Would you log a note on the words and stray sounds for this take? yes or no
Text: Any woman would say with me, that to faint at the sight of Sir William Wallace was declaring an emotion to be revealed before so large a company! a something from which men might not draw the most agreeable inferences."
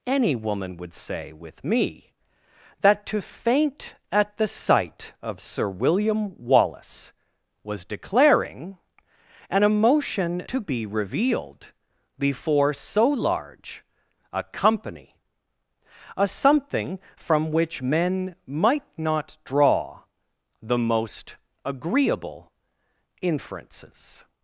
no